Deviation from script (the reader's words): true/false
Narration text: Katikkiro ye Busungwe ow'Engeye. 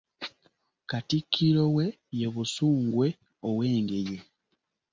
true